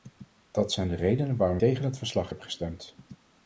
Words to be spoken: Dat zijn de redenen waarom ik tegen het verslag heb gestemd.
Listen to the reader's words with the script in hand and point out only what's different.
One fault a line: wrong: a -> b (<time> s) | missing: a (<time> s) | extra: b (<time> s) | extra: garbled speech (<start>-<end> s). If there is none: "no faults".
missing: ik (1.6 s)